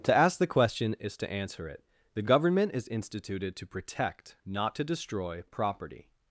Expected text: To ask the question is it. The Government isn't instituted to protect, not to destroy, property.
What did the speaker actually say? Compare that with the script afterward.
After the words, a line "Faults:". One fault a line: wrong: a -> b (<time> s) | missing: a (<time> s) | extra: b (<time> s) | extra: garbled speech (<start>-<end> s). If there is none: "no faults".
To ask the question is to answer it. The Government is instituted to protect, not to destroy, property.
Faults:
extra: to answer (1.2 s)
wrong: isn't -> is (2.7 s)